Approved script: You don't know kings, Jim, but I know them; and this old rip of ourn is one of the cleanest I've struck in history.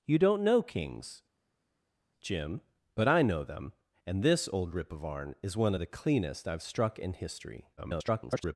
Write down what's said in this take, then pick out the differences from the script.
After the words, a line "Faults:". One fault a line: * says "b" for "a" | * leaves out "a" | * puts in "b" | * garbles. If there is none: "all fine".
You don't know kings, Jim, but I know them; and this old rip of ourn is one of the cleanest I've struck in history. [garbled]
Faults:
* garbles